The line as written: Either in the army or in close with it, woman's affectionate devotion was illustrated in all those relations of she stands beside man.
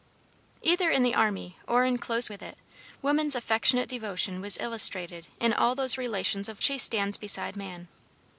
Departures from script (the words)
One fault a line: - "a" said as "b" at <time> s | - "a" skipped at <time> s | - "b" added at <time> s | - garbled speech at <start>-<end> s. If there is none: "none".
none